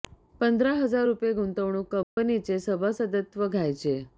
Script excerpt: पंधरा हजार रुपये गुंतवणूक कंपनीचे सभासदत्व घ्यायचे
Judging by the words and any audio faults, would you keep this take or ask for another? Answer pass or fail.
fail